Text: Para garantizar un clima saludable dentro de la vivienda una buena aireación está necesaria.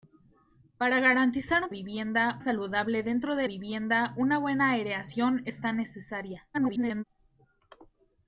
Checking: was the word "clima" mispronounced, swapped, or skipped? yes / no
yes